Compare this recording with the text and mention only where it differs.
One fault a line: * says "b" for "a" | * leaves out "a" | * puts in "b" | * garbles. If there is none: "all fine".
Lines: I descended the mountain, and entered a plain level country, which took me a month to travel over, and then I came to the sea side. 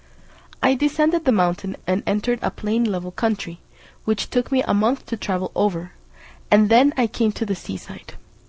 all fine